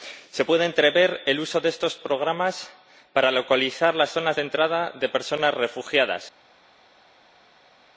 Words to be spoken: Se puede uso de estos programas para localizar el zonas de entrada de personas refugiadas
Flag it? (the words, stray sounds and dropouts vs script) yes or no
yes